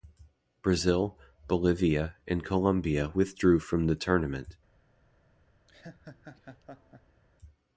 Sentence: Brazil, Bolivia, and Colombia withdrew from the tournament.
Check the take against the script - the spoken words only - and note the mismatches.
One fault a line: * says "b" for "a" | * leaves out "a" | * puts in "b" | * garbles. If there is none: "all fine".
all fine